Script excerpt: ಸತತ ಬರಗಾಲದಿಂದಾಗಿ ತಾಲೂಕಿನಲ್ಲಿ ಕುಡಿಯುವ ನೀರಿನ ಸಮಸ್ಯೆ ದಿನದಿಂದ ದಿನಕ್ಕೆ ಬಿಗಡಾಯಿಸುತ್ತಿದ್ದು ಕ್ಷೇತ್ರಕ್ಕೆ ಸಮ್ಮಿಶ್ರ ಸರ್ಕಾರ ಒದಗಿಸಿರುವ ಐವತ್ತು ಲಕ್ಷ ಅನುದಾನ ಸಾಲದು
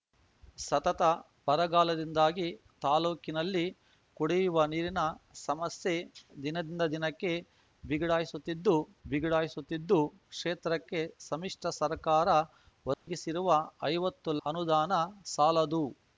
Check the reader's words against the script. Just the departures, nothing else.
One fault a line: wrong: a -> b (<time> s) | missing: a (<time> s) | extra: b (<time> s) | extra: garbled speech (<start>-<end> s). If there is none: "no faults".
extra: ಬಿಗಡಾಯಿಸುತ್ತಿದ್ದು (9.0 s)
missing: ಲಕ್ಷ (14.3 s)